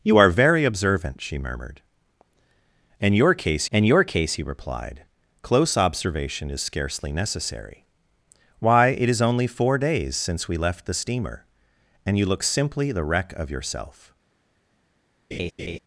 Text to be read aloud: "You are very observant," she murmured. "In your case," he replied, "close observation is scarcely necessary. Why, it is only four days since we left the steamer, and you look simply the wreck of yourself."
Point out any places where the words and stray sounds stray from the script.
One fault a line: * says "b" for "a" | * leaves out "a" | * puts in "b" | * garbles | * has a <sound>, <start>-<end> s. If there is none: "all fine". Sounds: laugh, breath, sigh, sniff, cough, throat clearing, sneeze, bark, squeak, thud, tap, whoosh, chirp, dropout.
* puts in "in your case"
* has a laugh, 15.3-15.8 s